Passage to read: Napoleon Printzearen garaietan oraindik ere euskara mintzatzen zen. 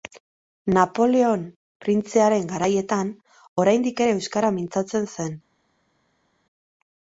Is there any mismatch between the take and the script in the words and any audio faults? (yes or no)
no